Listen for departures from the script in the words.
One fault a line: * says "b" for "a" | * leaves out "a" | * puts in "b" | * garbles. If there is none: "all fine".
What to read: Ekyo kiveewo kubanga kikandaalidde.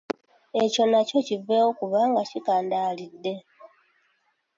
* puts in "nakyo"